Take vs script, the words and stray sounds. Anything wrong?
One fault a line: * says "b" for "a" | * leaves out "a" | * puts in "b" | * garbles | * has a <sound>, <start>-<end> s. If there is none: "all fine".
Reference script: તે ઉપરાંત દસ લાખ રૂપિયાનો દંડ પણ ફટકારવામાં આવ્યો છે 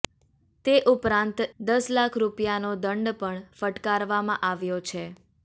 all fine